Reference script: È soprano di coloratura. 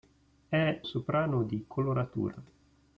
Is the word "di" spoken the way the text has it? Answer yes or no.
yes